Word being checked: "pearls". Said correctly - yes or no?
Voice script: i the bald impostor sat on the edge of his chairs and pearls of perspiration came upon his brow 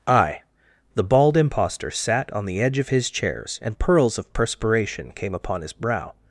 yes